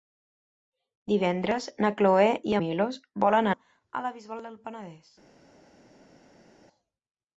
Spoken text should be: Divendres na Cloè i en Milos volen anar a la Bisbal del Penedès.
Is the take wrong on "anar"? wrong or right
wrong